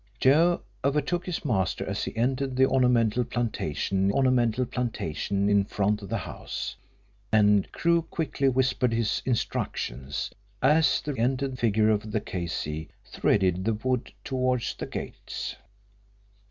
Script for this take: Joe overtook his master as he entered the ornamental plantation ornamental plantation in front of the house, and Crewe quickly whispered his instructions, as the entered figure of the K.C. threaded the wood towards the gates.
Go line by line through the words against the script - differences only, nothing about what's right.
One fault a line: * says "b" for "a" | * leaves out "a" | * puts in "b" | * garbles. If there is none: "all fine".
all fine